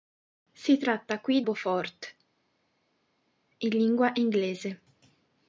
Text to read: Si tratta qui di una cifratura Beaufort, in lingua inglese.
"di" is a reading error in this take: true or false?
true